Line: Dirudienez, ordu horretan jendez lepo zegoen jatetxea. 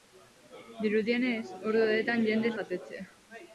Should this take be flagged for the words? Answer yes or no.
yes